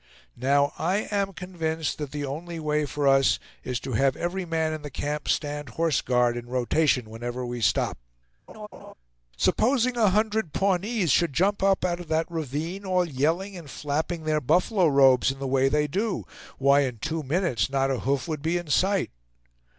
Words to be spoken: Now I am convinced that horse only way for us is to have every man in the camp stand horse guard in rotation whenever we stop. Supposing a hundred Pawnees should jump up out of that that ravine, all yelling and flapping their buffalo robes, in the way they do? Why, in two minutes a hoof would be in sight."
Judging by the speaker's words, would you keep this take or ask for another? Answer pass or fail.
fail